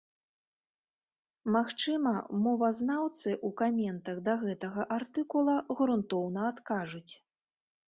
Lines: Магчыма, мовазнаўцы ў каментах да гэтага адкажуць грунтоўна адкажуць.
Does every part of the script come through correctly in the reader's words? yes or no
no